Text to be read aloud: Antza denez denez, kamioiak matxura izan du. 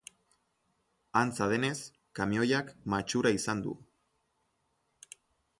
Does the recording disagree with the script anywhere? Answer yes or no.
yes